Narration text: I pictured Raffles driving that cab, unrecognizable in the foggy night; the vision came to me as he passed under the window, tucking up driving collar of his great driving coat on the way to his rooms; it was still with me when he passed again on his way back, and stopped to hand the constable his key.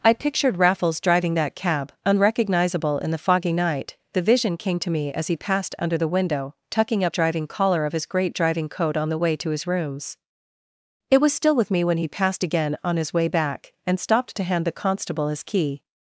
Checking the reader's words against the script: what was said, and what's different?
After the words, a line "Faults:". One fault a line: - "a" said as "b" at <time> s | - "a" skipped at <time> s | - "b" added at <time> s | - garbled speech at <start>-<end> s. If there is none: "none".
I pictured Raffles driving that cab, unrecognizable in the foggy night; the vision came to me as he passed under the window, tucking up driving collar of his great driving coat on the way to his rooms; it was still with me when he passed again on his way back, and stopped to hand the constable his key.
Faults:
none